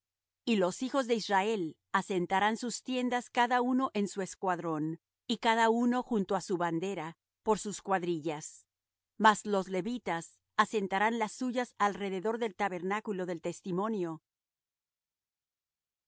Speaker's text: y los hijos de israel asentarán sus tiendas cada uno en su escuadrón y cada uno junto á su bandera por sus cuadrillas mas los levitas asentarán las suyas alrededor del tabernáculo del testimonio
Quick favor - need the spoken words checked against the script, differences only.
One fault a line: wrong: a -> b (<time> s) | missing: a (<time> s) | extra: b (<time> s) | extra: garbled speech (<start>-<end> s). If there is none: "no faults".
no faults